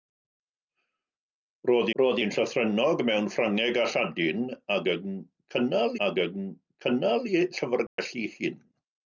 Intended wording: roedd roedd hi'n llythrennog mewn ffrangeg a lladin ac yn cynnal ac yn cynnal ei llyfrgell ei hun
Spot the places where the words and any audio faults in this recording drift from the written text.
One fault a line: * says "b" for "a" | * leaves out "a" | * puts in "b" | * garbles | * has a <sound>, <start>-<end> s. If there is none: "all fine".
* has a dropout, 7.9-8.0 s